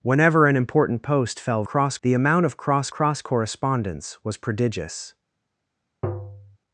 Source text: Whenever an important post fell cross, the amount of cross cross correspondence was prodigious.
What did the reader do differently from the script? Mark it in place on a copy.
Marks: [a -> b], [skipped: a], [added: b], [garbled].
Whenever an important post fell cross, the amount of cross cross correspondence was prodigious.